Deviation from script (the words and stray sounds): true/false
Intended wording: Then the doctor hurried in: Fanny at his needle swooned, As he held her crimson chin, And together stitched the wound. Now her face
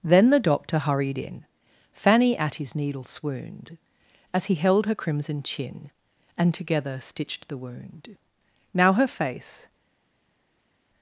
false